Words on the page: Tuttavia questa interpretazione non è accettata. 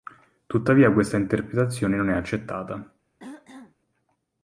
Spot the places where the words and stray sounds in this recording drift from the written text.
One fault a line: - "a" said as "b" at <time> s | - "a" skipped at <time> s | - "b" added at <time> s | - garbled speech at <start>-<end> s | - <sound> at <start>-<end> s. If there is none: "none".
- throat clearing at 3.2-3.8 s